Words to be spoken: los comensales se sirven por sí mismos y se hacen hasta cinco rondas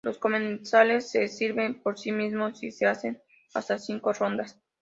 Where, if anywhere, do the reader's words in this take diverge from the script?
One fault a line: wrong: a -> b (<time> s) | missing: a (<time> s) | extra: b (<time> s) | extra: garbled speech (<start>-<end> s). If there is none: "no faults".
no faults